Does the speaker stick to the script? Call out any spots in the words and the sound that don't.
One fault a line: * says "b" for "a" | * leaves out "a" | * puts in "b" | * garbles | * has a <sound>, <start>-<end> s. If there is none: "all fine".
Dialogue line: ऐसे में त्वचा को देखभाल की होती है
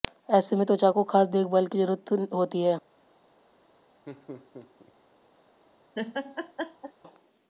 * puts in "खास"
* puts in "जरूरत"
* has a laugh, 4.1-4.9 s
* has a laugh, 5.9-6.9 s